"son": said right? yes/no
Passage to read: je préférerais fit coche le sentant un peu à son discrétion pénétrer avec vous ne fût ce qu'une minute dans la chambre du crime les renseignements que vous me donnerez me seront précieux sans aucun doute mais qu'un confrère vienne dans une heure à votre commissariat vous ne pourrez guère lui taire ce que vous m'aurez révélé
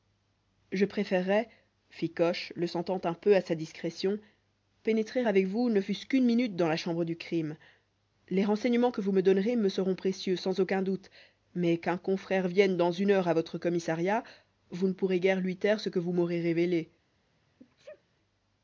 no